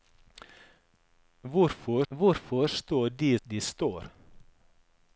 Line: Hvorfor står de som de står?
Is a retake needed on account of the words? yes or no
yes